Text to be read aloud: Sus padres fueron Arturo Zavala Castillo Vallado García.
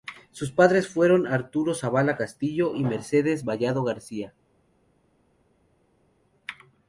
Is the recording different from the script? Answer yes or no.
yes